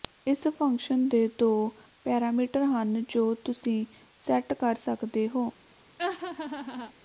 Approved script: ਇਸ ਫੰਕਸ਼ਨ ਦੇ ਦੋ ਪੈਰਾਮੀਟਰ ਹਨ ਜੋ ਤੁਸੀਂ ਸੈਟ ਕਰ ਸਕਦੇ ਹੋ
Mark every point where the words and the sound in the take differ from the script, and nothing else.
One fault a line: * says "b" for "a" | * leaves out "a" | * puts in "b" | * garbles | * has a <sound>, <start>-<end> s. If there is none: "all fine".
* has a laugh, 6.0-6.9 s